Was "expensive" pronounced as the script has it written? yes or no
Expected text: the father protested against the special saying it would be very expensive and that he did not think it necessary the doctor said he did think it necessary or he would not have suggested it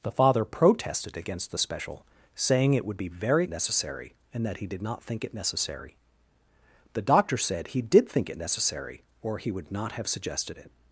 no